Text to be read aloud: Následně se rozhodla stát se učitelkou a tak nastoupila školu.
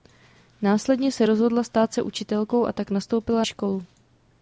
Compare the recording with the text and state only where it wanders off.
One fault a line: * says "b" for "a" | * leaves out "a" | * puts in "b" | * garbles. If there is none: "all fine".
all fine